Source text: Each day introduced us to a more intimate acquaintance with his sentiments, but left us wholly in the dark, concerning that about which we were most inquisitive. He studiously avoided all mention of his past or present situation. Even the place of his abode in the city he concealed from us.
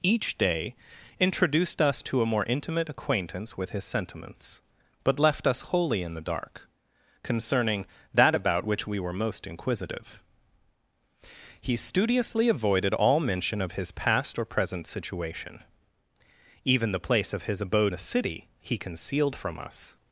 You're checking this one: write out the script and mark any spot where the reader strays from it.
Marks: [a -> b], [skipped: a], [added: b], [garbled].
Each day introduced us to a more intimate acquaintance with his sentiments, but left us wholly in the dark, concerning that about which we were most inquisitive. He studiously avoided all mention of his past or present situation. Even the place of his abode [skipped: in] the city he concealed from us.